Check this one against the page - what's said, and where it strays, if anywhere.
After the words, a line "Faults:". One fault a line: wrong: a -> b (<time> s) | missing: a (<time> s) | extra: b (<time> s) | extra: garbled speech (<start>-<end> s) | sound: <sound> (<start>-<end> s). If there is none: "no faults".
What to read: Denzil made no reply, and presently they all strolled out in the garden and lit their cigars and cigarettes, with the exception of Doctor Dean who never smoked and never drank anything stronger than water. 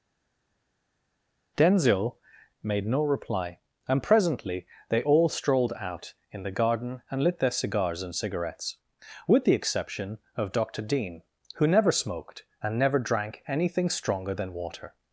Denzil made no reply, and presently they all strolled out in the garden and lit their cigars and cigarettes, with the exception of Doctor Dean who never smoked and never drank anything stronger than water.
Faults:
no faults